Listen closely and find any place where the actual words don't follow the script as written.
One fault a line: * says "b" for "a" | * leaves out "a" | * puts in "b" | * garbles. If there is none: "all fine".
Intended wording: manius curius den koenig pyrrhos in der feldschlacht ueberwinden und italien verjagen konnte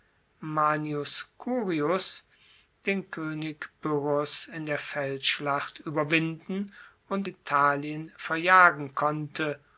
all fine